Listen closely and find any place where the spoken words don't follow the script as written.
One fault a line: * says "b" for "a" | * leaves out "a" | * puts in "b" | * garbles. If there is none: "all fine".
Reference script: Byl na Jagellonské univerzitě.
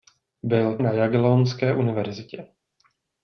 all fine